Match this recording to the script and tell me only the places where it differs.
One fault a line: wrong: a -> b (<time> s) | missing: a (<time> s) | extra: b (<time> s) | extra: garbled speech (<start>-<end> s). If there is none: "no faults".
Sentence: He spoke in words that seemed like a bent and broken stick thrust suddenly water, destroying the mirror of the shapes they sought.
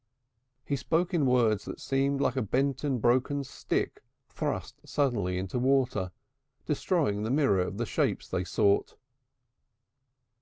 extra: into (5.4 s)